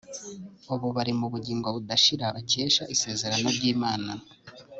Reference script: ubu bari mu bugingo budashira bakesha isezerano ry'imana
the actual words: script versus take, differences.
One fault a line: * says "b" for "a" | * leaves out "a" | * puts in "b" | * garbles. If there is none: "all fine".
all fine